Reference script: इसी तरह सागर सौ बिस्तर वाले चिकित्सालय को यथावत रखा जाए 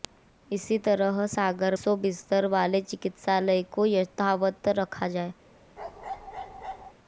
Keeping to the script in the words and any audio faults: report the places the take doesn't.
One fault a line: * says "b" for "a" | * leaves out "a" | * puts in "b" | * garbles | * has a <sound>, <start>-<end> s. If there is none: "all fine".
* has a bark, 5.8-6.9 s